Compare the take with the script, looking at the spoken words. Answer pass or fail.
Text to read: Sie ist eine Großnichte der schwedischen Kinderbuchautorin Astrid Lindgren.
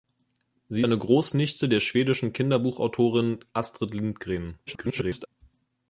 fail